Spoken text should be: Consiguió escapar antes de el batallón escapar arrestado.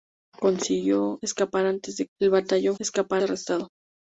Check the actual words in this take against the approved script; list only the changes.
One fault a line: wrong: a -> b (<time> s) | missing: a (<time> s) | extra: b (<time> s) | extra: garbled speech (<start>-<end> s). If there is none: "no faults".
no faults